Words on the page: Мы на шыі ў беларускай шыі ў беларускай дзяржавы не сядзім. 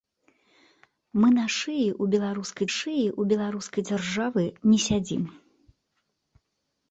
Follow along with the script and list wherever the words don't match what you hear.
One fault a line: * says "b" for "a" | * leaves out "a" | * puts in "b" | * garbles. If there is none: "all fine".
all fine